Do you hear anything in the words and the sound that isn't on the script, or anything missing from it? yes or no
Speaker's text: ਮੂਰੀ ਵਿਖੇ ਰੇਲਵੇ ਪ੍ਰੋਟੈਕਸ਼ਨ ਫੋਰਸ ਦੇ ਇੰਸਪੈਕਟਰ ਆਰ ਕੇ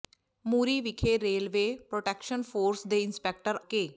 yes